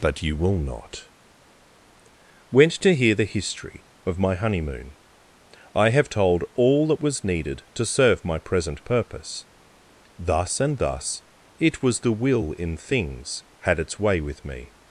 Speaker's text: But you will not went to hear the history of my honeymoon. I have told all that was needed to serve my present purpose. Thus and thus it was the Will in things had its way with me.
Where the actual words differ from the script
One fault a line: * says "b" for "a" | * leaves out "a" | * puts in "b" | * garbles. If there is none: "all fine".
all fine